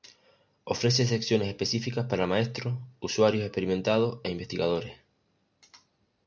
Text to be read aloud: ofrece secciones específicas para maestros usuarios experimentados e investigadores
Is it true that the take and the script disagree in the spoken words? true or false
false